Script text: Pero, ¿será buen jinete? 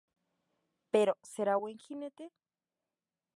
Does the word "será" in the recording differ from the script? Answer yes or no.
no